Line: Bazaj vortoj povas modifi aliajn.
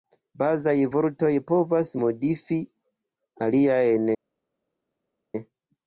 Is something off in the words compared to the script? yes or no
no